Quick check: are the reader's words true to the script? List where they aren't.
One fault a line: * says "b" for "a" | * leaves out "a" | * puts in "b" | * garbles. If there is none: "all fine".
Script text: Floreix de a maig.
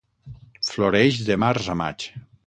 * puts in "març"